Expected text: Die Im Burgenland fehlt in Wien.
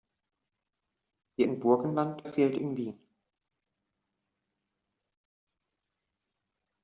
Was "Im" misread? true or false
false